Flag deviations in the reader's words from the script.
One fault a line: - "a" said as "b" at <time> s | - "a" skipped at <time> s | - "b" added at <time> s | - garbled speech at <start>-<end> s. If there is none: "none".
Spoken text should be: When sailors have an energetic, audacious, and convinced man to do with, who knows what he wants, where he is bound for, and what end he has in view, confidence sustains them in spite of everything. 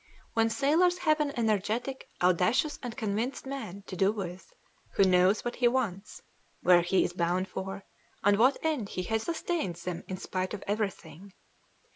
- "in view confidence" skipped at 9.3 s